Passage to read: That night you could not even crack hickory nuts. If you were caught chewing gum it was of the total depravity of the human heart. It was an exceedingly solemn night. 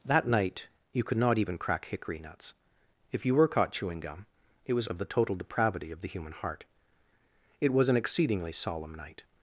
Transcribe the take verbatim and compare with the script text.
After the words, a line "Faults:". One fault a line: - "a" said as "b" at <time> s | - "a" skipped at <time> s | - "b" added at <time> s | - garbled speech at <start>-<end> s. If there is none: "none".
That night you could not even crack hickory nuts. If you were caught chewing gum it was of the total depravity of the human heart. It was an exceedingly solemn night.
Faults:
none